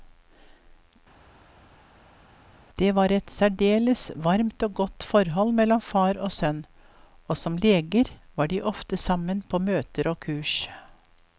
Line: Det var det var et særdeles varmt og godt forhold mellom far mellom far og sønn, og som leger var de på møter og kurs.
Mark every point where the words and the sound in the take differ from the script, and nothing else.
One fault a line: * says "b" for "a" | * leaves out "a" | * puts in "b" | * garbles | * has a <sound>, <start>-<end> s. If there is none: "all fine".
* leaves out "det var"
* leaves out "mellom far"
* puts in "ofte sammen"